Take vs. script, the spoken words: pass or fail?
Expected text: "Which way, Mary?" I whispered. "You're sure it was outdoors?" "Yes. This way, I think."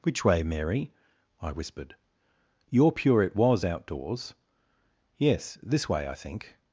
fail